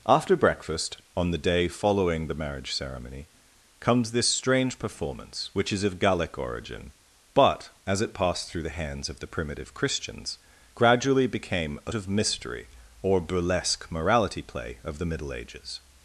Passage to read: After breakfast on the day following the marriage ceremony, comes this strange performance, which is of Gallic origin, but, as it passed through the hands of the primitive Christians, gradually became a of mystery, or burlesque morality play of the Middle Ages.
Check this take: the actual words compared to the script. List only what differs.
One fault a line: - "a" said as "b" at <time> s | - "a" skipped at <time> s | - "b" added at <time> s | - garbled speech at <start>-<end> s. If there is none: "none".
none